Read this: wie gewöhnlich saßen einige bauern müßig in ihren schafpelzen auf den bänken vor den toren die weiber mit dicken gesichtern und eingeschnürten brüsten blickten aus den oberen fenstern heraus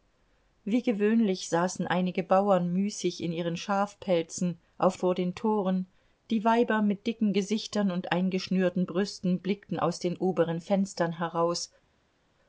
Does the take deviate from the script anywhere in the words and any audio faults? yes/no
yes